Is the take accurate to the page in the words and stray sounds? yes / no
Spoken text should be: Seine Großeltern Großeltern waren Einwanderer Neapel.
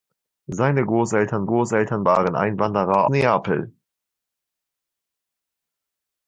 yes